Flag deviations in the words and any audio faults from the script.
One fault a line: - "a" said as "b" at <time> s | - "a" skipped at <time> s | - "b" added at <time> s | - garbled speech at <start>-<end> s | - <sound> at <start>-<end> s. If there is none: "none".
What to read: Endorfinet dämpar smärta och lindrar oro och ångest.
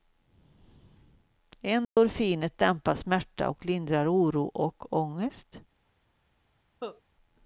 - dropout at 1.8-2.0 s
- cough at 6.8-7.0 s